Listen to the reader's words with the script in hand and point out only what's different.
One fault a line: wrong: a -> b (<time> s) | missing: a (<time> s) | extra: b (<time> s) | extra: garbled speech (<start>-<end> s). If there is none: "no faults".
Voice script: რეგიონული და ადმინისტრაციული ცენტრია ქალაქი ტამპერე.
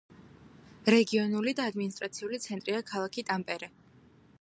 no faults